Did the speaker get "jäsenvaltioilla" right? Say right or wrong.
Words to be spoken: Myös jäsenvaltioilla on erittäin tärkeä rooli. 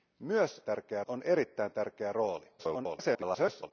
wrong